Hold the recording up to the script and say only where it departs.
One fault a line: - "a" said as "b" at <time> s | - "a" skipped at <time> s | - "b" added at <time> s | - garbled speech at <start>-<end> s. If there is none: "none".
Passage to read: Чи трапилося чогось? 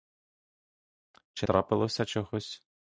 none